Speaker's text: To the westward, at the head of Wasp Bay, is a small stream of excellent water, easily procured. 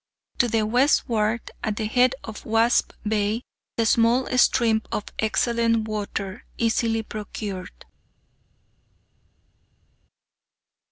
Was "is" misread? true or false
true